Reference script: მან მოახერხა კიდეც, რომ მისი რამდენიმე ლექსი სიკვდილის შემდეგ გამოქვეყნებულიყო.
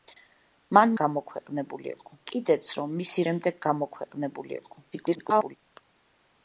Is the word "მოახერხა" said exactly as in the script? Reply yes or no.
no